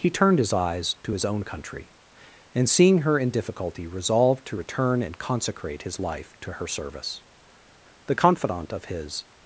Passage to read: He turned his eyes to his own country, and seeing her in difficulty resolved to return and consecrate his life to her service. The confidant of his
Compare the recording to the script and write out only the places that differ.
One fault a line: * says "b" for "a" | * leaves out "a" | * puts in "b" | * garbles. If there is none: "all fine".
all fine